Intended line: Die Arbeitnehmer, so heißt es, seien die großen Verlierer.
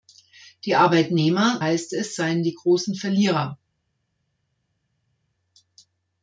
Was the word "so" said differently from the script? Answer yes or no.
yes